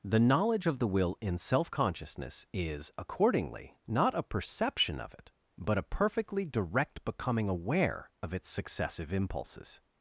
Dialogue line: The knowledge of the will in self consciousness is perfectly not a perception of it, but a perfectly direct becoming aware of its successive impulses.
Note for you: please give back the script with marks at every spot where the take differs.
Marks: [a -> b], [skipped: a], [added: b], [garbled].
The knowledge of the will in self consciousness is [perfectly -> accordingly] not a perception of it, but a perfectly direct becoming aware of its successive impulses.